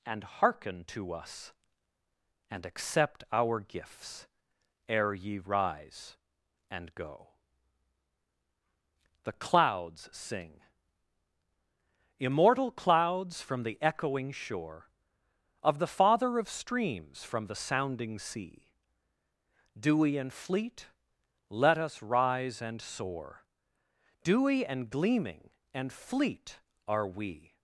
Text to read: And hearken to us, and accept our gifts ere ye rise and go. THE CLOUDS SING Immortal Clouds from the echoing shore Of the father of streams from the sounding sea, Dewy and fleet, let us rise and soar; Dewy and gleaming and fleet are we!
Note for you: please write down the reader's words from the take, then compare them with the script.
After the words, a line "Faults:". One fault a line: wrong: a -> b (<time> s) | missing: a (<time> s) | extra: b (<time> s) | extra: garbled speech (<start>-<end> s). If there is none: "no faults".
And hearken to us, and accept our gifts ere ye rise and go. THE CLOUDS SING Immortal Clouds from the echoing shore Of the father of streams from the sounding sea, Dewy and fleet, let us rise and soar; Dewy and gleaming and fleet are we!
Faults:
no faults